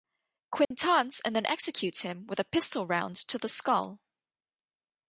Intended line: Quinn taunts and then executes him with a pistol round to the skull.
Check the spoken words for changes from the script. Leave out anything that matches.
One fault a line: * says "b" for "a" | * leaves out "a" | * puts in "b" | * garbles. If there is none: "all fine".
all fine